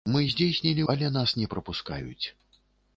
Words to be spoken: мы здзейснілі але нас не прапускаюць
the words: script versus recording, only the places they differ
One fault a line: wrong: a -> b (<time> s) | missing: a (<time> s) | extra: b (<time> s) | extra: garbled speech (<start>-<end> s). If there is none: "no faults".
no faults